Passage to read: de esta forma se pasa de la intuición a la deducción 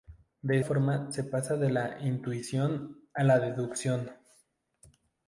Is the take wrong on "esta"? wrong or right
wrong